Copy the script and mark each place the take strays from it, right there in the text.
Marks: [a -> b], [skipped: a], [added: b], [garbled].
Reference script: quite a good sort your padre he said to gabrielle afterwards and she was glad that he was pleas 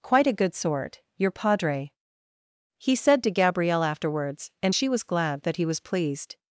quite a good sort your padre he said to gabrielle afterwards and she was glad that he was [pleas -> pleased]